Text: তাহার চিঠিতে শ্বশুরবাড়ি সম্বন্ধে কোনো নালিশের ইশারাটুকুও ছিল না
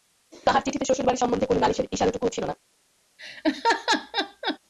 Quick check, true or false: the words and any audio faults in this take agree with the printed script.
false